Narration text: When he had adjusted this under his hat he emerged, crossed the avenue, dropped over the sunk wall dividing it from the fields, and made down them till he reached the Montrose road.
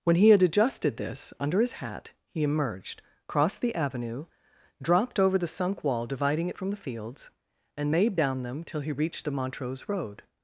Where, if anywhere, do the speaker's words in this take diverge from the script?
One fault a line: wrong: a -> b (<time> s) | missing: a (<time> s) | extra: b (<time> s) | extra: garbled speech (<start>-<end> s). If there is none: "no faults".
no faults